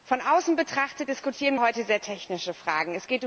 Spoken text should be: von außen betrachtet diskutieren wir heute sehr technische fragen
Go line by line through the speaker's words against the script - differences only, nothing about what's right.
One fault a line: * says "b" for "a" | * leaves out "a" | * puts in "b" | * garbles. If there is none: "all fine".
* leaves out "wir"